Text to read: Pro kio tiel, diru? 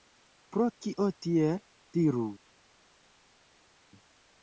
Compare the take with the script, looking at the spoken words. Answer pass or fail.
pass